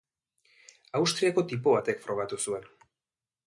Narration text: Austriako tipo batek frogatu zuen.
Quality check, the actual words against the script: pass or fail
pass